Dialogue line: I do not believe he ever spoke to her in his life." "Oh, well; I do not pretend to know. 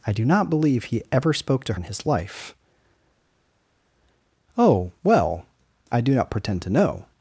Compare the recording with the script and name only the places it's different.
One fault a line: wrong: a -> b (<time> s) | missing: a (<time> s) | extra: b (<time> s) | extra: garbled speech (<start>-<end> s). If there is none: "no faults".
missing: her (1.8 s)